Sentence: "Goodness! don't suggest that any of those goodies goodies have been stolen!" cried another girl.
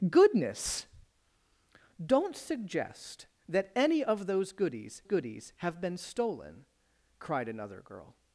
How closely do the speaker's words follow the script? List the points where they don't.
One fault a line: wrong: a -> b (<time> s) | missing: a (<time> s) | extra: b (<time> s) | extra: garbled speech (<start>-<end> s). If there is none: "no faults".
no faults